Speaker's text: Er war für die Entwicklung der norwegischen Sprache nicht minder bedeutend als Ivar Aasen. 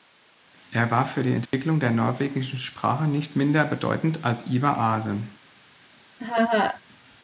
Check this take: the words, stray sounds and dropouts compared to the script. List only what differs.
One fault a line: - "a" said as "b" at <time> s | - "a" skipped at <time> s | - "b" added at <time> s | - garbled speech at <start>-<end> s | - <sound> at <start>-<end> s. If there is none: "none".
- dropout at 1.5-1.5 s
- laugh at 6.2-6.8 s